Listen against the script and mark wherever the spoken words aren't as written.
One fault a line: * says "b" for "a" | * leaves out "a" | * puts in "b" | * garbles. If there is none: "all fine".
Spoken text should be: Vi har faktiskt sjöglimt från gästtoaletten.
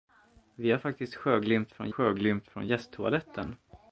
* puts in "sjöglimt från"